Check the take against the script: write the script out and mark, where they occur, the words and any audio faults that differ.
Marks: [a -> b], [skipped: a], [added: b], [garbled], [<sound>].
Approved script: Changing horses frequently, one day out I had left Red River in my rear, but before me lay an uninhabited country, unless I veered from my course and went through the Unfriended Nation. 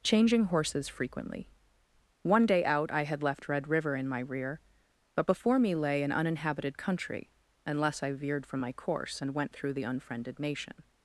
Changing horses frequently, one day out I had left Red River in my rear, but before me lay an uninhabited country, unless I veered from my course and went through the Unfriended Nation.